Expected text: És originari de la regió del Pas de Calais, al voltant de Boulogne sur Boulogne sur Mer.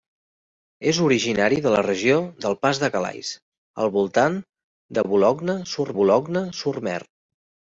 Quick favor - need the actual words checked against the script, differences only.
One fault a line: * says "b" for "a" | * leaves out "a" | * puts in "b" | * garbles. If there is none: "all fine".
all fine